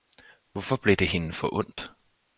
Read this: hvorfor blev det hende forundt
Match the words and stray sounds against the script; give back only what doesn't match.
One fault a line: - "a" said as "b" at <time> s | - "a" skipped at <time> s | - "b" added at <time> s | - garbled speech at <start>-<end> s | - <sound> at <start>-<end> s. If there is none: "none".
- dropout at 1.7-1.8 s